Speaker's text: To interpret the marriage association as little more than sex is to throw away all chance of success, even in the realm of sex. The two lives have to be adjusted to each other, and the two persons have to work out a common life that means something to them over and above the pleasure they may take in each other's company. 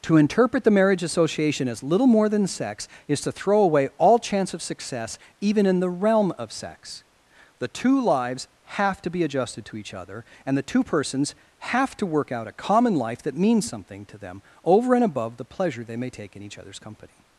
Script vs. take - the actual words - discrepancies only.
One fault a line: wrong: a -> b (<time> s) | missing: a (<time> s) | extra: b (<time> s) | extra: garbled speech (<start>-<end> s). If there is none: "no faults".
no faults